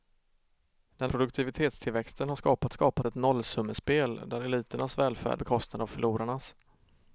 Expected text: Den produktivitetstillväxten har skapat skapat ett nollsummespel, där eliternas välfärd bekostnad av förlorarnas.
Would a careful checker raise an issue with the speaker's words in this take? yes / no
no